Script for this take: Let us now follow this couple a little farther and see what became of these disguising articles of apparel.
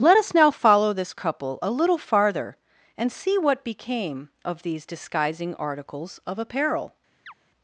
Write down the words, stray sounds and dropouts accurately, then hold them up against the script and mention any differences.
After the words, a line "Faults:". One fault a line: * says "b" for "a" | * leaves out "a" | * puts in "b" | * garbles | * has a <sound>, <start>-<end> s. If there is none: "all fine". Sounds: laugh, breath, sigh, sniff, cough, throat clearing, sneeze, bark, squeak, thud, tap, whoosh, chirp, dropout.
Let us now follow this couple a little farther and see what became of these disguising articles of apparel.
Faults:
* has a chirp, 7.3-7.3 s